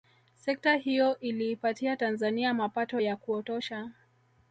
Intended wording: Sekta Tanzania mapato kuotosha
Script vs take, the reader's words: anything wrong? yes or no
yes